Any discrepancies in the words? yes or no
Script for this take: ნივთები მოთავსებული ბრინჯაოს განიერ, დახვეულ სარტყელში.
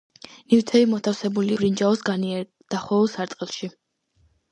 no